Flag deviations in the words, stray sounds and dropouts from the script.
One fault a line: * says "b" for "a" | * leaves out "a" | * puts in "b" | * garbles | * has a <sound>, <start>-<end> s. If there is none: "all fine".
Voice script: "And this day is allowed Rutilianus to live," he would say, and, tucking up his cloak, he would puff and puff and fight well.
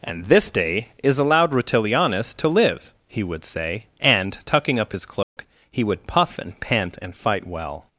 * has a dropout, 5.2-5.4 s
* says "pant" for "puff"